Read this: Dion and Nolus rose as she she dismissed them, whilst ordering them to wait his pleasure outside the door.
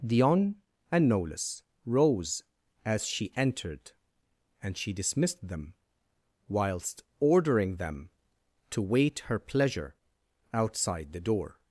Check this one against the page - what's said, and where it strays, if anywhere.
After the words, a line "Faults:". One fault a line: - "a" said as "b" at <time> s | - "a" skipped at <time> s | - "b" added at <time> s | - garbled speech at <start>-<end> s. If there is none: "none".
Dion and Nolus rose as she entered, and she dismissed them, whilst ordering them to wait her pleasure outside the door.
Faults:
- "entered and" added at 3.4 s
- "his" said as "her" at 9.3 s